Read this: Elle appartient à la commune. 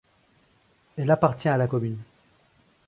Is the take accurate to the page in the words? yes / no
yes